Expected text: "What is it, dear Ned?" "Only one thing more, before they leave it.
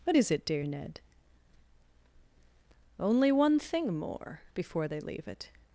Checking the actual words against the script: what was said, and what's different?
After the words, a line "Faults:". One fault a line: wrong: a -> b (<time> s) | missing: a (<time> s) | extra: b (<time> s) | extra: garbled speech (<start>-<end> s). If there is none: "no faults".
"What is it, dear Ned?" "Only one thing more, before they leave it.
Faults:
no faults